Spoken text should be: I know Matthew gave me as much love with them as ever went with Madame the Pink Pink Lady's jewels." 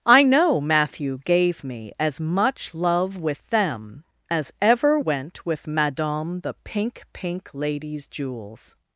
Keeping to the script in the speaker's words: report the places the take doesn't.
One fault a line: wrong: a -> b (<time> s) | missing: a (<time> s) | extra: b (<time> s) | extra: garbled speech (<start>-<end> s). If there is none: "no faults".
no faults